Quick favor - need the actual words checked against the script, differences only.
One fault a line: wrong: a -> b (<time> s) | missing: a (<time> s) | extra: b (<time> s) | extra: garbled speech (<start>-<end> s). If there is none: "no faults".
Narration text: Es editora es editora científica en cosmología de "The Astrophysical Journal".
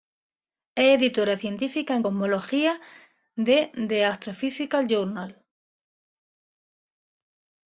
missing: es editora (1.4 s)